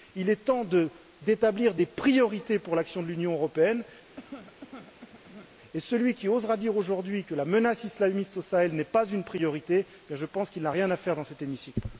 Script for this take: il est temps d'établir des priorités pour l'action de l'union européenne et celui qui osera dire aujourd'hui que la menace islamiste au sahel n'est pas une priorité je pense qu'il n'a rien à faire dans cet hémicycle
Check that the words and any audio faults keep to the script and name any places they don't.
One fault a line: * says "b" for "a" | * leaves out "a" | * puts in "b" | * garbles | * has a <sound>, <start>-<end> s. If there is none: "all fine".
* has a cough, 4.2-5.5 s